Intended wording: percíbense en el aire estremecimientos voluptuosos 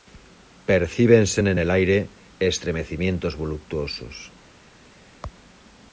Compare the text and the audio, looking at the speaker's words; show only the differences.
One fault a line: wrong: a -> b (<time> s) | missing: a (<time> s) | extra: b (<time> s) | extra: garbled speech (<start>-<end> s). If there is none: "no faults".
no faults